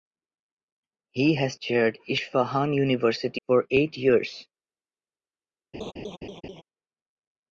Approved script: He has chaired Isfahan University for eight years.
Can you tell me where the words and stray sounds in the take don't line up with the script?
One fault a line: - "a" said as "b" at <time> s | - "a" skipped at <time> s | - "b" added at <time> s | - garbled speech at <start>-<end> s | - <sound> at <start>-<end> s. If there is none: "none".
- laugh at 5.7-6.6 s